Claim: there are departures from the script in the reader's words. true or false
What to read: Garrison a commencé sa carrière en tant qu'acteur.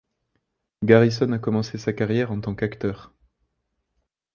false